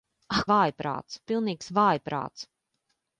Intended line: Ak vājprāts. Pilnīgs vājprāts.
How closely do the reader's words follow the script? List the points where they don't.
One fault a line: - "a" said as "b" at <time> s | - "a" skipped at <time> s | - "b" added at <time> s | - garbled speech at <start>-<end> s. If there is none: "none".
none